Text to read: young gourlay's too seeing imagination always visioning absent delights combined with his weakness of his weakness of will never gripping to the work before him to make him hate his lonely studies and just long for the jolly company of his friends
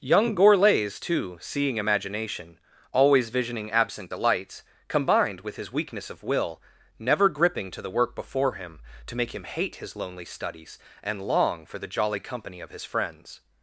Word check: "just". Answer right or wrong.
wrong